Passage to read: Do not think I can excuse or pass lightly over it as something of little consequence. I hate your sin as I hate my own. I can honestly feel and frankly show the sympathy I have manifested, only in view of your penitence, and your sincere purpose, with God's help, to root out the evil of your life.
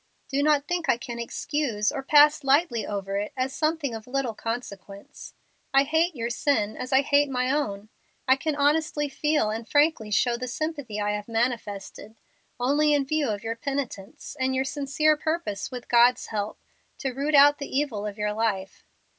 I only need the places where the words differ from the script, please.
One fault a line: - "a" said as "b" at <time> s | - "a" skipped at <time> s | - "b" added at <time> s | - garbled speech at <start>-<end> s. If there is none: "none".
none